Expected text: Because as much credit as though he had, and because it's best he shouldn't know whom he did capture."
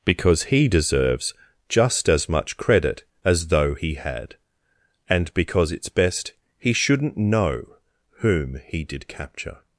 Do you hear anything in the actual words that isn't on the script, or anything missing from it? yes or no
yes